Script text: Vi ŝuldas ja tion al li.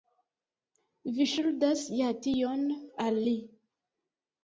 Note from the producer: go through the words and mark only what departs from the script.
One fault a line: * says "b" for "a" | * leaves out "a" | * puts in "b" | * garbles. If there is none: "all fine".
all fine